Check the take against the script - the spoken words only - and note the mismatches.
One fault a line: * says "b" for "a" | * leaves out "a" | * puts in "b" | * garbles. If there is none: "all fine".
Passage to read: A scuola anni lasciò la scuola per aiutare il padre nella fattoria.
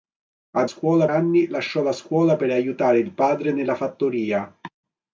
all fine